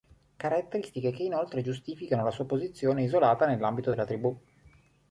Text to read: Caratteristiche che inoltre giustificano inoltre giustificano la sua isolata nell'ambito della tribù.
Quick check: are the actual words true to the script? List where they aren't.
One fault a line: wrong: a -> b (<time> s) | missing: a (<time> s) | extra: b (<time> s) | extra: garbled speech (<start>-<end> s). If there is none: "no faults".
missing: inoltre giustificano (2.2 s)
extra: posizione (2.4 s)